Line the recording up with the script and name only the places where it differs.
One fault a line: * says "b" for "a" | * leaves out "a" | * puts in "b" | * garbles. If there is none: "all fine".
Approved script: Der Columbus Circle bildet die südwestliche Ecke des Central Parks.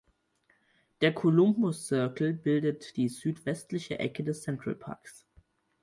all fine